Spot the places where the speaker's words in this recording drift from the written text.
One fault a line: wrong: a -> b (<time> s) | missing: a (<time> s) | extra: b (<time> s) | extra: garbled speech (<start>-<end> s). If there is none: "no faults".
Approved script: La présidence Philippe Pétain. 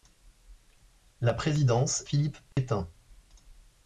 no faults